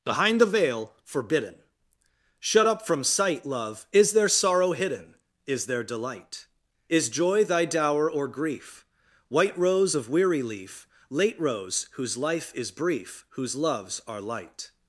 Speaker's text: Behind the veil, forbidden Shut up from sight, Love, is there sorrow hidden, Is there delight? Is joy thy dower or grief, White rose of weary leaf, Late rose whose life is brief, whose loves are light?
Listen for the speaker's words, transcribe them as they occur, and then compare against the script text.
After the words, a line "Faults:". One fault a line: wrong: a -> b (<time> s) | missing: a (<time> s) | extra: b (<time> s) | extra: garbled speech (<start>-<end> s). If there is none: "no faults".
Behind the veil, forbidden Shut up from sight, Love, is there sorrow hidden, Is there delight? Is joy thy dower or grief, White rose of weary leaf, Late rose whose life is brief, whose loves are light?
Faults:
no faults